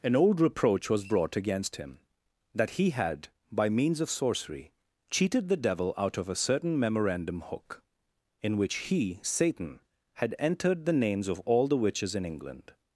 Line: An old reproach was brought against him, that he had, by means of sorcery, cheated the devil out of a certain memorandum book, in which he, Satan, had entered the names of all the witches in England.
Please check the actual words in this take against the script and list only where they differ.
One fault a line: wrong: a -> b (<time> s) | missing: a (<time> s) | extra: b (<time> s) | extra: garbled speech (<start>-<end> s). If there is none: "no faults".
wrong: book -> hook (7.4 s)